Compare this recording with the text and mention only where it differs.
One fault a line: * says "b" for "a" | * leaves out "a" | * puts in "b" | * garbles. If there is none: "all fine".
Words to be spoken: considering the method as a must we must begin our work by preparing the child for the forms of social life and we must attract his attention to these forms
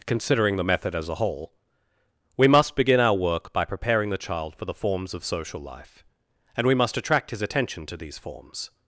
* says "whole" for "must"